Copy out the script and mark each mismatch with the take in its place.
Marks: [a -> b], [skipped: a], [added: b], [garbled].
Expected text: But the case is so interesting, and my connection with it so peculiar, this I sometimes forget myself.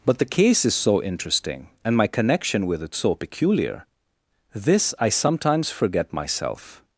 But the case is so interesting, and my connection with it so peculiar, this I sometimes forget myself.